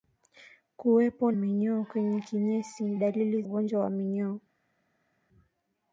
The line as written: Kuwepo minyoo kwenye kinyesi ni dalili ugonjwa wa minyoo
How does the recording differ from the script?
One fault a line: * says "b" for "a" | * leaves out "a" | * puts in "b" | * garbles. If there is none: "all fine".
all fine